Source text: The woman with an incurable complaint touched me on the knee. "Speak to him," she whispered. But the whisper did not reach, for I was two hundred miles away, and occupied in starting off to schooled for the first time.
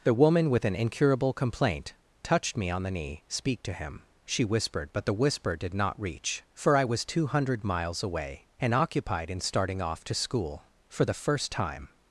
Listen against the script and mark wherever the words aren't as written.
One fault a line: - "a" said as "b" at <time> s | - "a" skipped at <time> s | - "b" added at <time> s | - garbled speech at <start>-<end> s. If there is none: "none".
- "schooled" said as "school" at 10.2 s